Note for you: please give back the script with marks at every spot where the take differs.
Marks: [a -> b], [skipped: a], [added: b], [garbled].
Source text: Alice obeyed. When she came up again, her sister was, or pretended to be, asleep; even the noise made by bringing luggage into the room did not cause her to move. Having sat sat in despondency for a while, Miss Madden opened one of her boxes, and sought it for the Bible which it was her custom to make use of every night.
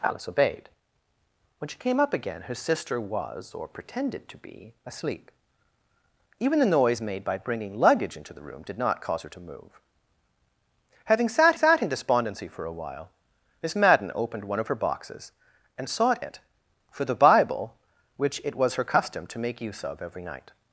Alice obeyed. When she came up again, her sister was, or pretended to be, asleep; even the noise made by bringing luggage into the room did not cause her to move. Having sat sat in despondency for a while, Miss Madden opened one of her boxes, and sought it for the Bible which it was her custom to make use of every night.